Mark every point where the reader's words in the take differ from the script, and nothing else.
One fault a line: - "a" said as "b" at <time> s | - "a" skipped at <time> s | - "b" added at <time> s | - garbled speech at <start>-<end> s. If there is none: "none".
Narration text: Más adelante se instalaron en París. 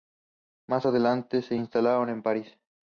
none